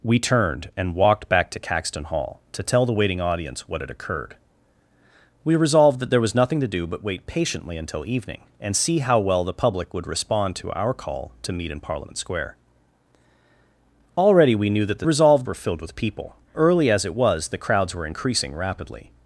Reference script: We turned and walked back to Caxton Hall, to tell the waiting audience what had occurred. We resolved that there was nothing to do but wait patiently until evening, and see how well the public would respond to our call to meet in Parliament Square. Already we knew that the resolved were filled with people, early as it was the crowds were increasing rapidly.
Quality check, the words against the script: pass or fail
pass